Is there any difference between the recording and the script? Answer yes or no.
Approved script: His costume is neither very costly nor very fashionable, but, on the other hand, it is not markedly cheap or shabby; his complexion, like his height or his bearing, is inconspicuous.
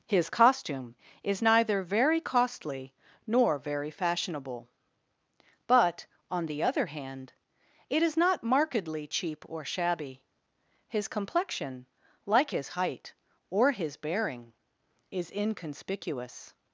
no